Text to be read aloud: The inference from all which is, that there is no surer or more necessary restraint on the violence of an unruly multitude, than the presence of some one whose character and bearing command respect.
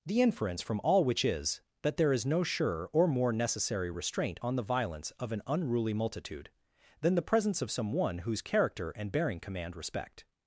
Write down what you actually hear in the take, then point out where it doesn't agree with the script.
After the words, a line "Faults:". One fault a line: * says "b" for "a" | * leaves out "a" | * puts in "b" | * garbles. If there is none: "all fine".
The inference from all which is, that there is no surer or more necessary restraint on the violence of an unruly multitude, than the presence of some one whose character and bearing command respect.
Faults:
all fine